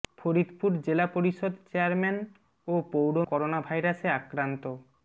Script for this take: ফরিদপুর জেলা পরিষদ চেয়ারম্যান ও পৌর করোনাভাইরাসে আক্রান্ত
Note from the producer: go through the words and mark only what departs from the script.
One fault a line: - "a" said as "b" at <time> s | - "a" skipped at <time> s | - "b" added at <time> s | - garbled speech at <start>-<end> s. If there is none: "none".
none